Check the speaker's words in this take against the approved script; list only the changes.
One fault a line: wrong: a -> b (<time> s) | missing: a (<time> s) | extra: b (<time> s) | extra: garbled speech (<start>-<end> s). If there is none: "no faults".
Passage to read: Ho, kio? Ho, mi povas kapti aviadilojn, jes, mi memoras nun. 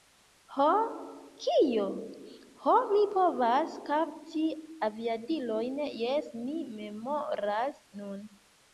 no faults